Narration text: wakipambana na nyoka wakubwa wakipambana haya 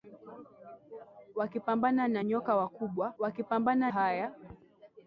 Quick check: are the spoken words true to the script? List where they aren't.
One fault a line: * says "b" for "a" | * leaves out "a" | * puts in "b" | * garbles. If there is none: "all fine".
all fine